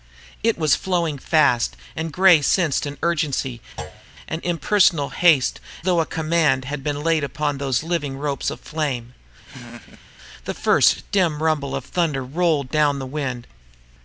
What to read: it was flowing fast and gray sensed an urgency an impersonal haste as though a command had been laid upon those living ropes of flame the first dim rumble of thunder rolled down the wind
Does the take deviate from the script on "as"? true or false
true